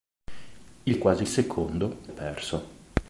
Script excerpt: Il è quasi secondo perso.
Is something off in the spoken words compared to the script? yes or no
no